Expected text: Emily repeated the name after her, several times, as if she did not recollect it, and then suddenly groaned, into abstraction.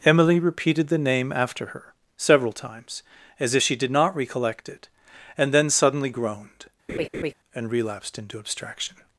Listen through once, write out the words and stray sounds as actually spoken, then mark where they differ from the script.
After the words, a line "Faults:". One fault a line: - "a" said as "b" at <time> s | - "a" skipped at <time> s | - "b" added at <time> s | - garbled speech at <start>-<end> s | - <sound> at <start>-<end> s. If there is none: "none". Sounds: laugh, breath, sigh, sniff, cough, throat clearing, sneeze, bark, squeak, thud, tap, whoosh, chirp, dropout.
Emily repeated the name after her, several times, as if she did not recollect it, and then suddenly groaned, and relapsed into abstraction.
Faults:
- laugh at 6.9-7.3 s
- "and relapsed" added at 7.6 s